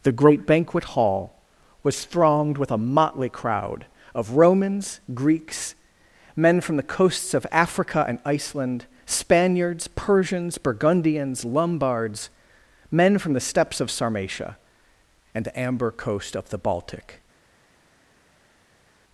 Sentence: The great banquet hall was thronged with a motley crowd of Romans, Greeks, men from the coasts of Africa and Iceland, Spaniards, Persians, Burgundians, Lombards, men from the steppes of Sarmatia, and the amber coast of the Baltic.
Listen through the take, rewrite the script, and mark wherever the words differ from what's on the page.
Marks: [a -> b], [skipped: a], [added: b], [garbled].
The great banquet hall was thronged with a motley crowd of Romans, Greeks, men from the coasts of Africa and Iceland, Spaniards, Persians, Burgundians, Lombards, men from the steppes of Sarmatia, and the amber coast of the Baltic.